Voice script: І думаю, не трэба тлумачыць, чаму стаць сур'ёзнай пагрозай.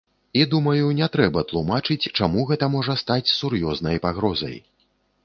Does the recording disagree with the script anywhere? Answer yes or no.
yes